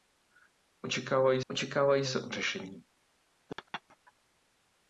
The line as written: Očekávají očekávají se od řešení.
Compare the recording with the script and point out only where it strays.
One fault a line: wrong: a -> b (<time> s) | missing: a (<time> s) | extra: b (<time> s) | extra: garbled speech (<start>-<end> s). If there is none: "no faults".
no faults